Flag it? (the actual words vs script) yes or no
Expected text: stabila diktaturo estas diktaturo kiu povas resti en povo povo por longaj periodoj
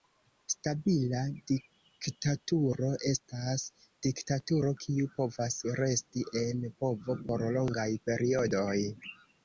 yes